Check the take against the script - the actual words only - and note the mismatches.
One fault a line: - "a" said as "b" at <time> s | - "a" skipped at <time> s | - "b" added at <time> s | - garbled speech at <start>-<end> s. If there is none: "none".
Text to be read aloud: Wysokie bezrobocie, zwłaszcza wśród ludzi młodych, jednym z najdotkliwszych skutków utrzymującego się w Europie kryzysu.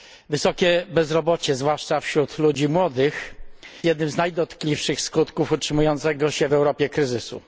none